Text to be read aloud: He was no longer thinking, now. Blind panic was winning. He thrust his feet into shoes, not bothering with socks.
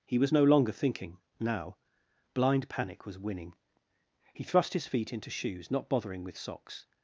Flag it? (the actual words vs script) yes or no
no